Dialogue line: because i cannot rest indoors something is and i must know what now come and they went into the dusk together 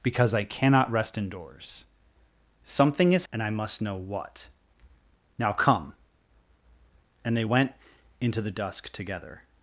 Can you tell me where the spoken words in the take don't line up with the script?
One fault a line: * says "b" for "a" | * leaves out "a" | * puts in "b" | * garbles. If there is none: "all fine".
all fine